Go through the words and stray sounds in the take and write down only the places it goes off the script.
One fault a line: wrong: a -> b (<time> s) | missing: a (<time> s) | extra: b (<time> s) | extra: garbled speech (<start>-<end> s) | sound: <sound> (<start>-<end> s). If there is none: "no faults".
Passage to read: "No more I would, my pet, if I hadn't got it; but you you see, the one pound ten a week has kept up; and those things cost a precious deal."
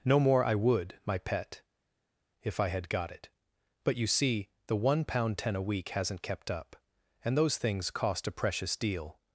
wrong: hadn't -> had (2.7 s)
missing: you (4.1 s)
wrong: has -> hasn't (5.9 s)